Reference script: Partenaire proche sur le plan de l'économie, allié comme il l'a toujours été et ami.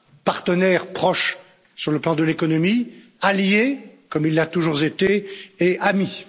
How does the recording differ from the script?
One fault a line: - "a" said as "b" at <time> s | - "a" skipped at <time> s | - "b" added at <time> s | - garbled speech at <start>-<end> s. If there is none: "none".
none